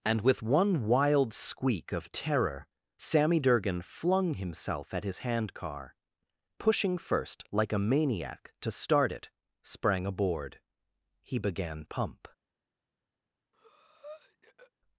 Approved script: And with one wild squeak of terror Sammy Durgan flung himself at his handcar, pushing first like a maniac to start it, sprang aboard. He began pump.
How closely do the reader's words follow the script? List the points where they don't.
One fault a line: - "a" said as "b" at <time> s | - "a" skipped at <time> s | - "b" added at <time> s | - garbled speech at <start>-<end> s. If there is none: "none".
none